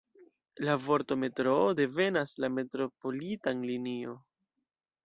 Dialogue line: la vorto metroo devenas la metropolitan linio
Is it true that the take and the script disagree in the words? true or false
false